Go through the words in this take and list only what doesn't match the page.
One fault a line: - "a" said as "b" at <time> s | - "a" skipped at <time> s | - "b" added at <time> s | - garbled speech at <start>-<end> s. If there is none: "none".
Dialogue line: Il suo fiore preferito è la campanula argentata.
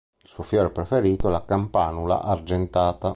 none